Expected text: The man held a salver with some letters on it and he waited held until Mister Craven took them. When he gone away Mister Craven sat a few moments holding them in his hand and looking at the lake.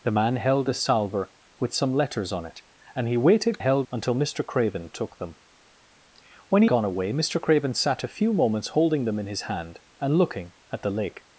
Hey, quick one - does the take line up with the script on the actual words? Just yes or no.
yes